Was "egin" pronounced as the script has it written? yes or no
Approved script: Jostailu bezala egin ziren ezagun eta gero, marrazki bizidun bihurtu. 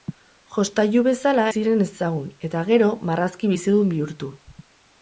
no